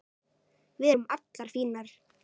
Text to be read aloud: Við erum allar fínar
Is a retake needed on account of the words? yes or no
no